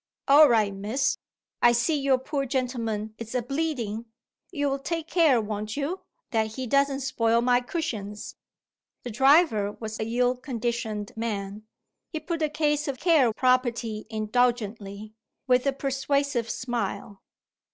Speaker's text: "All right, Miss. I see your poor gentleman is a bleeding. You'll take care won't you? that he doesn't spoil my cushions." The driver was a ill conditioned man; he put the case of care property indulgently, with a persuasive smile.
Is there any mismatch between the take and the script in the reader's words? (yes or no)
no